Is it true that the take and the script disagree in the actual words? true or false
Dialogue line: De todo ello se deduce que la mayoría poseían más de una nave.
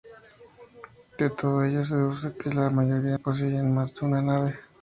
false